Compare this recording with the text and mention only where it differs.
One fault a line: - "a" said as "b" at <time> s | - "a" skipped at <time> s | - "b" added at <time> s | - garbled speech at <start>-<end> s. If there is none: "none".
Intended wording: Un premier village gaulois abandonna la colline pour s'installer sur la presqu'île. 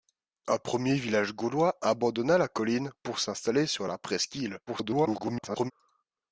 - garbled speech at 4.7-5.7 s